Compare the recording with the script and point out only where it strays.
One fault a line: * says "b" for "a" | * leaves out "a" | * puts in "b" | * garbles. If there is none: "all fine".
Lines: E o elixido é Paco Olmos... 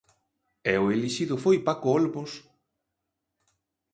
* says "foi" for "é"